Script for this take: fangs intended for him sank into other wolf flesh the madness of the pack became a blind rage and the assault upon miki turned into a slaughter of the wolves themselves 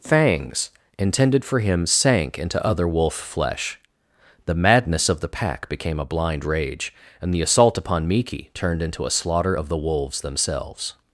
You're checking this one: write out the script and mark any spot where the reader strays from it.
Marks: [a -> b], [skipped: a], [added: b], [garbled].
fangs intended for him sank into other wolf flesh the madness of the pack became a blind rage and the assault upon miki turned into a slaughter of the wolves themselves